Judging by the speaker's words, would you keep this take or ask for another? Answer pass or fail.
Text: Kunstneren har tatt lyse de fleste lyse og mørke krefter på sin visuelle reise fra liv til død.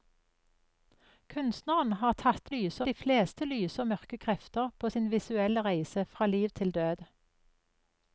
pass